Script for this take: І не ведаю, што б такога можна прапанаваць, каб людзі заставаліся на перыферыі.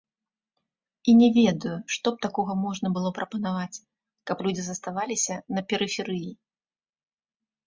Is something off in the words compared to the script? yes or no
yes